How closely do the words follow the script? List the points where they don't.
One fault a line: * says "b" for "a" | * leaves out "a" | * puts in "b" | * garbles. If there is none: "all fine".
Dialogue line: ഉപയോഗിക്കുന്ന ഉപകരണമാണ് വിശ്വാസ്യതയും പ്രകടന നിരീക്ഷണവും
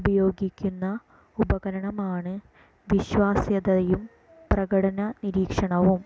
all fine